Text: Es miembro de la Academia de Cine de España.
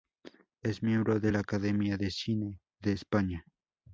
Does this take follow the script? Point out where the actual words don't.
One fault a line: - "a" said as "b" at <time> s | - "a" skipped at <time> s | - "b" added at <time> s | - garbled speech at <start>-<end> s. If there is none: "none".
none